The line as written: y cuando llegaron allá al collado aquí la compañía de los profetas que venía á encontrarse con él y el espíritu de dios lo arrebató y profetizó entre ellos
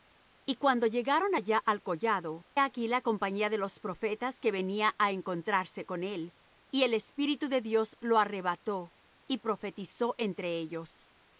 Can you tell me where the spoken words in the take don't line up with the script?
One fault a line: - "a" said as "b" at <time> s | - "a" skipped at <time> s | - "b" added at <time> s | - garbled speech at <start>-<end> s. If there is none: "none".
none